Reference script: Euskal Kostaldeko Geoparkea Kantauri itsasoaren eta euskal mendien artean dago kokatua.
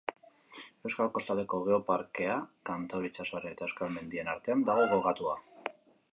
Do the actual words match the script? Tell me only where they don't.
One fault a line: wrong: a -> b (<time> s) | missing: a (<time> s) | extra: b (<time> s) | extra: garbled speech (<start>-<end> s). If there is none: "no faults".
no faults